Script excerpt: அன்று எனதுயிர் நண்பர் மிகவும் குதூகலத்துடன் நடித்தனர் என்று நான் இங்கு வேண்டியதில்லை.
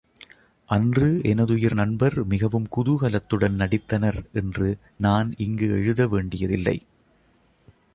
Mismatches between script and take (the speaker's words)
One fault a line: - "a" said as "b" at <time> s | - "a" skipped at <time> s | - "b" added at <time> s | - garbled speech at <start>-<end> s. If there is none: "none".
- "எழுத" added at 5.7 s